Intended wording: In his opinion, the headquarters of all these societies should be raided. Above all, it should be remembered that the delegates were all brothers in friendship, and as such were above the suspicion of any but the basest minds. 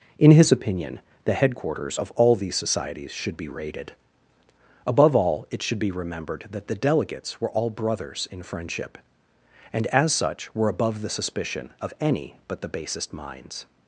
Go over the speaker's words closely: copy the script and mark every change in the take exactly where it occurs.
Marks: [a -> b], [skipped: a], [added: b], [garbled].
In his opinion, the headquarters of all these societies should be raided. Above all, it should be remembered that the delegates were all brothers in friendship, and as such were above the suspicion of any but the basest minds.